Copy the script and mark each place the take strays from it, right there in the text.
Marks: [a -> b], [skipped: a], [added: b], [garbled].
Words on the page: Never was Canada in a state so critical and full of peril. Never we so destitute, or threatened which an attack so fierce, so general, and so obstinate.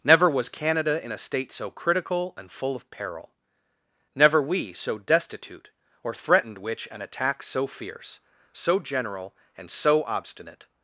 Never was Canada in a state so critical and full of peril. Never we so destitute, or threatened which an attack so fierce, so general, and so obstinate.